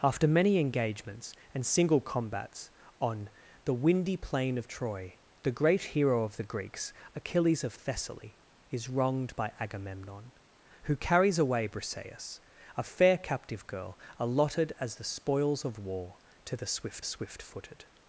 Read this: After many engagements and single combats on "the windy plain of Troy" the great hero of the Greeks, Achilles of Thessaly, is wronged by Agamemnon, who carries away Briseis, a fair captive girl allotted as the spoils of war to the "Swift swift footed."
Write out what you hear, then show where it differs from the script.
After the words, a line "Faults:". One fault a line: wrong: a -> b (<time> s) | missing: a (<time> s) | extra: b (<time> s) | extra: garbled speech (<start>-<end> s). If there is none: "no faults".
After many engagements and single combats on "the windy plain of Troy" the great hero of the Greeks, Achilles of Thessaly, is wronged by Agamemnon, who carries away Briseis, a fair captive girl allotted as the spoils of war to the "Swift swift footed."
Faults:
no faults